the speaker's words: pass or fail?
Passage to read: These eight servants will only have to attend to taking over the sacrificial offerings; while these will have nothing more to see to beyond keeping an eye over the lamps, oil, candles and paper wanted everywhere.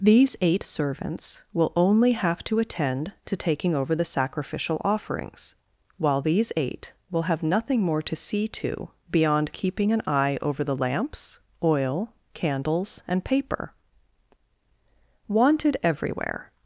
fail